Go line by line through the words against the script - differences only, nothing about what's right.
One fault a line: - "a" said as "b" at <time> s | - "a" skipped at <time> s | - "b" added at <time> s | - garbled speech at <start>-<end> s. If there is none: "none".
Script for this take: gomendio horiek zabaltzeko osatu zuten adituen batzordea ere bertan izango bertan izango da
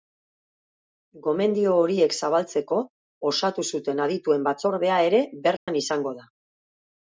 - "bertan izango" skipped at 6.2 s